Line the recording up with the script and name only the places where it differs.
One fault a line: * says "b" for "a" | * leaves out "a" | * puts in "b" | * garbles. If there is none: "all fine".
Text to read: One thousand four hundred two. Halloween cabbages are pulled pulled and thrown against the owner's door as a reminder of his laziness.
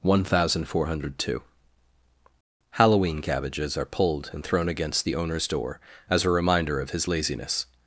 * leaves out "pulled"